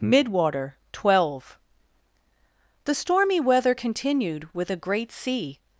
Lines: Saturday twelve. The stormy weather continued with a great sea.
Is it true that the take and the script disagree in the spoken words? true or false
true